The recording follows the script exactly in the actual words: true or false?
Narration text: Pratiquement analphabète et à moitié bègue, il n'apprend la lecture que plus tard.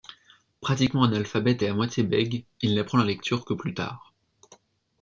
true